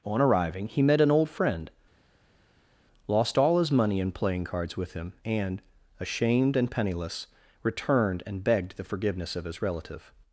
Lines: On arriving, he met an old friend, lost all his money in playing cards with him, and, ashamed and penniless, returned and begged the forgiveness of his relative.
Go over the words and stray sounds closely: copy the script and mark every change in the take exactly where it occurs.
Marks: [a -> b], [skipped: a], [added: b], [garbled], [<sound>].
On arriving, he met an old friend, lost all his money in playing cards with him, and, ashamed and penniless, returned and begged the forgiveness of his relative.